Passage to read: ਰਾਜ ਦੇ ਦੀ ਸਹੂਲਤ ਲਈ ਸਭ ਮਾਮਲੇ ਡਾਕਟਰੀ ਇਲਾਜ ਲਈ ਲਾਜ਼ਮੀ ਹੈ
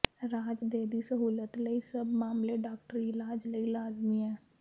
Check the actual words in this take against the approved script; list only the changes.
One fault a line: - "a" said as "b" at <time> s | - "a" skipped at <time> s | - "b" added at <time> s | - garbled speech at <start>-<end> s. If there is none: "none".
none